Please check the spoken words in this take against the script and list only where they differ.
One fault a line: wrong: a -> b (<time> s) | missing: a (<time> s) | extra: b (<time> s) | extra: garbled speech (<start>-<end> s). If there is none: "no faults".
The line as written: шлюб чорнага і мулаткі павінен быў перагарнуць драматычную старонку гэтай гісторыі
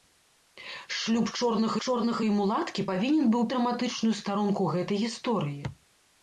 extra: чорнага (1.9 s)
missing: перагарнуць (3.5 s)